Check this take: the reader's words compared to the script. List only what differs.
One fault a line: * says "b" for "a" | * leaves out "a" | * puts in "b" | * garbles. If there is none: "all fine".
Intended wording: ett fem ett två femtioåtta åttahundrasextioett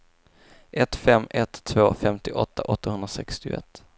all fine